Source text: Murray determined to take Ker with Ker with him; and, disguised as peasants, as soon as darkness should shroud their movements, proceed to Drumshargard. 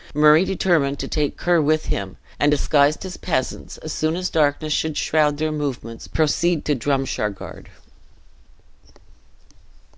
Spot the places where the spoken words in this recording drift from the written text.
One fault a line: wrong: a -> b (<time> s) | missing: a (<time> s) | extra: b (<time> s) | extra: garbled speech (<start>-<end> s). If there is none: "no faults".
missing: Ker with (1.9 s)